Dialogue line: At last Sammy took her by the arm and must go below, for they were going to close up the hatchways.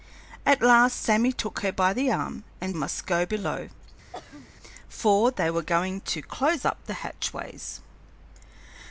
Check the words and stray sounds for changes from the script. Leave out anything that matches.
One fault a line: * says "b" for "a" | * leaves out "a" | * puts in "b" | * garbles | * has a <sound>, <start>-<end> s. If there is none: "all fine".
* has a throat clearing, 4.1-4.5 s